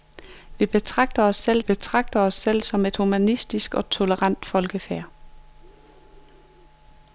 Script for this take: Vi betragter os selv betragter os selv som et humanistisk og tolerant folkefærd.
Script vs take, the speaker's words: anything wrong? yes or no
no